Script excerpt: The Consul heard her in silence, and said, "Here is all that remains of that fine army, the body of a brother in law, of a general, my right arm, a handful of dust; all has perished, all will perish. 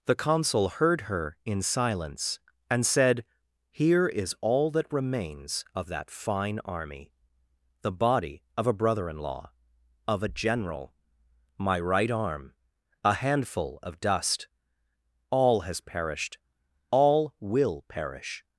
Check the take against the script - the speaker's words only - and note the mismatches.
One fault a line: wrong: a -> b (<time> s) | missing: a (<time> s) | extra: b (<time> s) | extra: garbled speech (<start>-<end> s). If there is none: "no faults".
no faults